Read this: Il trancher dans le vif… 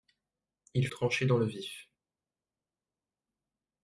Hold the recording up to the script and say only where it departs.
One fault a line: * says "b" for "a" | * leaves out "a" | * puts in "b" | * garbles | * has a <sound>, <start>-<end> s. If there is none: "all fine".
all fine